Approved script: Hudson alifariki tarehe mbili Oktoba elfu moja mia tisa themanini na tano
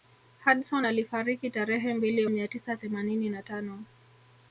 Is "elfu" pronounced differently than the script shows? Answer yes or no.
yes